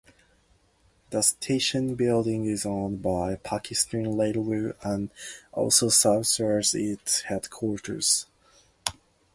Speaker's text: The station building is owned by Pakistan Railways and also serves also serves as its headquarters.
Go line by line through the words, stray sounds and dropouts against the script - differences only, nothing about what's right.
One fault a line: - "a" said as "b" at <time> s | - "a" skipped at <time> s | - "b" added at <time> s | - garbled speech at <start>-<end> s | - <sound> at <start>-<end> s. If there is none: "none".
- "also serves" skipped at 6.4 s